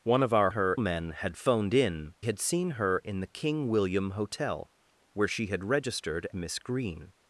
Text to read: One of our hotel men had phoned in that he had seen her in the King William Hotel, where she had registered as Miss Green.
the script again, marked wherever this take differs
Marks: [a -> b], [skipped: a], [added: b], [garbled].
One of our [hotel -> her] men had phoned in [skipped: that he] had seen her in the King William Hotel, where she had registered [skipped: as] Miss Green.